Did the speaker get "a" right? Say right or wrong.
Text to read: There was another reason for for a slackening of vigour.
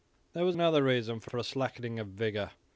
right